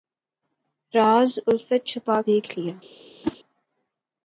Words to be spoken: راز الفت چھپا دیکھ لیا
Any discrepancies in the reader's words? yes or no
no